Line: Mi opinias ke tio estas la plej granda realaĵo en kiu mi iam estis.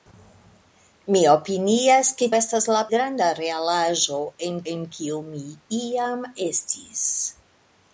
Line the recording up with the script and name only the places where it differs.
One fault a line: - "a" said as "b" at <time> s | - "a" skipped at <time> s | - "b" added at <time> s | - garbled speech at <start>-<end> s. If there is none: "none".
- "tio" skipped at 2.3 s
- "plej" skipped at 2.8 s
- "en" added at 4.7 s